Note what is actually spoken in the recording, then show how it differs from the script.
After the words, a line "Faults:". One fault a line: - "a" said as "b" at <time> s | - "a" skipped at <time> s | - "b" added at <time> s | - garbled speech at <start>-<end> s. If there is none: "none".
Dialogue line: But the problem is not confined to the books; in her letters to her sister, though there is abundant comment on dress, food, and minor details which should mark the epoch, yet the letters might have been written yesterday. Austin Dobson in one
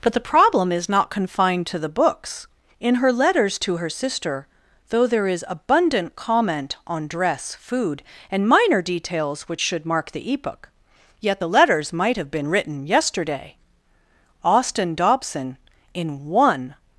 But the problem is not confined to the books; in her letters to her sister, though there is abundant comment on dress, food, and minor details which should mark the epoch, yet the letters might have been written yesterday. Austin Dobson in one
Faults:
none